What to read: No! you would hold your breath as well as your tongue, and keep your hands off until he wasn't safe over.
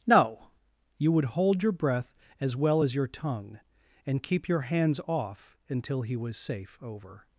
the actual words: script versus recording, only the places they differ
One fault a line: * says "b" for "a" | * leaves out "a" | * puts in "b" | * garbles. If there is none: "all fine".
* says "was" for "wasn't"